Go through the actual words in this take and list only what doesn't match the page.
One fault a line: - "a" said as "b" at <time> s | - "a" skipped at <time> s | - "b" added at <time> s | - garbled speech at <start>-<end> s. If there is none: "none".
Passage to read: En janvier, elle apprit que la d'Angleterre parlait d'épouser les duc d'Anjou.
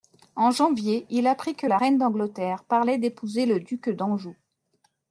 - "elle" said as "il" at 1.1 s
- "reine" added at 1.7 s
- "les" said as "le" at 3.4 s